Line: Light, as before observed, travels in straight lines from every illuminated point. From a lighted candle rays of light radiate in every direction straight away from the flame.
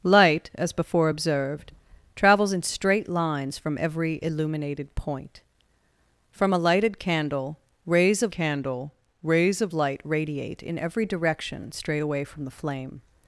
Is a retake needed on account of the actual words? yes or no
yes